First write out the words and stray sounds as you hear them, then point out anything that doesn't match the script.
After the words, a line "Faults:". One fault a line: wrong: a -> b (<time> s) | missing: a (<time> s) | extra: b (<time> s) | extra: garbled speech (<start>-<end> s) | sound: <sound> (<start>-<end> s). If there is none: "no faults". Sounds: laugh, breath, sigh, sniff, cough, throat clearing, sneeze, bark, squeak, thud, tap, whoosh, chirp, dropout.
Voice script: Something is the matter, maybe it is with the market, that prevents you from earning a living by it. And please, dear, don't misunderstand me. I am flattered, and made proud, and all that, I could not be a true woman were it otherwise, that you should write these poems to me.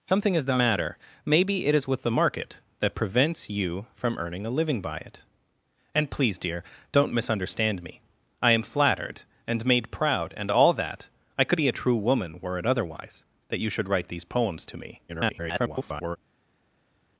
Something is the matter, maybe it is with the market, that prevents you from earning a living by it. And please, dear, don't misunderstand me. I am flattered, and made proud, and all that, I could be a true woman were it otherwise, that you should write these poems to me. [garbled]
Faults:
missing: not (11.6 s)
extra: garbled speech (15.1-16.2 s)